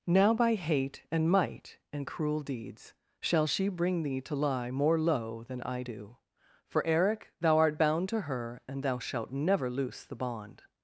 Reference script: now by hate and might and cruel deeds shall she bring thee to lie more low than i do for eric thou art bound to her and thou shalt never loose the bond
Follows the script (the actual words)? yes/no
yes